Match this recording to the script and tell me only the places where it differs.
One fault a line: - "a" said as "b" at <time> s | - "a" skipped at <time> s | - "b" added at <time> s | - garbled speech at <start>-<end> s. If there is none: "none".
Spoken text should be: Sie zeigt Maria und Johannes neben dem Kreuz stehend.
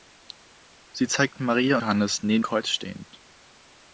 - "und" skipped at 1.8 s
- "dem" skipped at 2.4 s